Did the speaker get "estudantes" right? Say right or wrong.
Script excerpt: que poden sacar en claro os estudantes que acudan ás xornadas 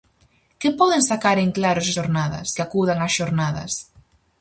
wrong